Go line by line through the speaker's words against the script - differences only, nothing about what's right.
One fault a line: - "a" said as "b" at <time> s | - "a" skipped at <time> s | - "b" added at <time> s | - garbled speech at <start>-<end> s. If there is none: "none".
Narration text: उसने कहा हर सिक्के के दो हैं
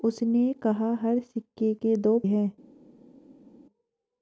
none